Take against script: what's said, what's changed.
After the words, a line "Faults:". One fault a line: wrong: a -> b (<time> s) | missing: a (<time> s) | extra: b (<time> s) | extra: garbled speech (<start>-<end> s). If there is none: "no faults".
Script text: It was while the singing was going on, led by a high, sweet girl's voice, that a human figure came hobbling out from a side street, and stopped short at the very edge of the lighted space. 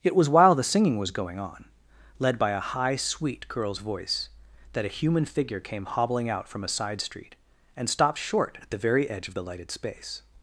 It was while the singing was going on, led by a high, sweet girl's voice, that a human figure came hobbling out from a side street, and stopped short at the very edge of the lighted space.
Faults:
no faults